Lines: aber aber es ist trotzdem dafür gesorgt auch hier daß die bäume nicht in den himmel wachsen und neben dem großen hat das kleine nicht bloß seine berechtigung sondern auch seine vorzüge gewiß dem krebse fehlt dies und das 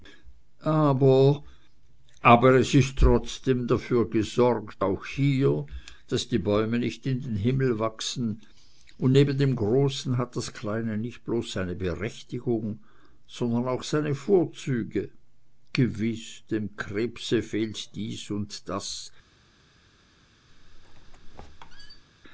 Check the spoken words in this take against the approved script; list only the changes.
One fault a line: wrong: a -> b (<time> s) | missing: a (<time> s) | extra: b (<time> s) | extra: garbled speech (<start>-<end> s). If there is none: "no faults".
no faults